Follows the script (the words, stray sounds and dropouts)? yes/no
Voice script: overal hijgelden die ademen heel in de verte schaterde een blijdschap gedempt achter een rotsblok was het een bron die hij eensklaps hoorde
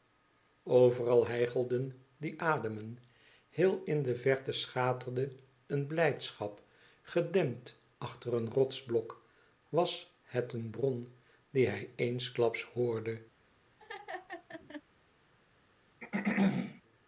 no